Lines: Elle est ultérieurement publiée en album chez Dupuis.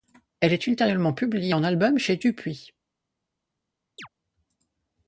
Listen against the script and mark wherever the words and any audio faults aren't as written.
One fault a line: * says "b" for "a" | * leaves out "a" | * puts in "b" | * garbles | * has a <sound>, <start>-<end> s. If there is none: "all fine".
* has a chirp, 4.0-4.1 s